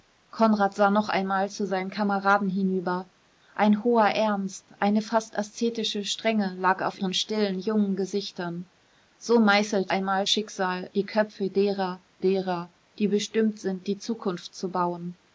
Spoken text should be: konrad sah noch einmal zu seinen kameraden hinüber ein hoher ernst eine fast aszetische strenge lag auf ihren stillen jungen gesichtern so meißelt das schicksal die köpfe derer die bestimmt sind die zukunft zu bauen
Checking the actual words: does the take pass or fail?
fail